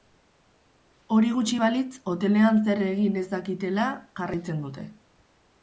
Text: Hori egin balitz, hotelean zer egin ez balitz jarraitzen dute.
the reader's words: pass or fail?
fail